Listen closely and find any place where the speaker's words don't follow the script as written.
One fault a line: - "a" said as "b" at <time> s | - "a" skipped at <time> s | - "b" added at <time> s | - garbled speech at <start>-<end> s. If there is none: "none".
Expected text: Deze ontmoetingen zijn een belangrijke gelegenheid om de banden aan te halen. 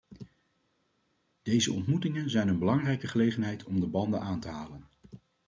none